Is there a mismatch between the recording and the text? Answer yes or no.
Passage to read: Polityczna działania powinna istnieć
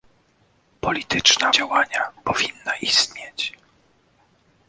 no